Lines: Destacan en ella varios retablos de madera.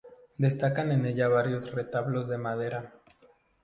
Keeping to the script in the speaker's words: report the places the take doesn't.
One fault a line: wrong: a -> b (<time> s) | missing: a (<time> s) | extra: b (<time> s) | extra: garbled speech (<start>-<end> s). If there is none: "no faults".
no faults